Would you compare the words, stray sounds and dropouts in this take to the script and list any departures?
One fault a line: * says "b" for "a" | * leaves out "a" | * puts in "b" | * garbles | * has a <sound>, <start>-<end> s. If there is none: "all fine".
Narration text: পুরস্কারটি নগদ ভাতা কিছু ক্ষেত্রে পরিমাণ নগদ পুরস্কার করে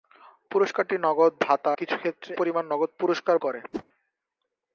* has a whoosh, 3.7-3.8 s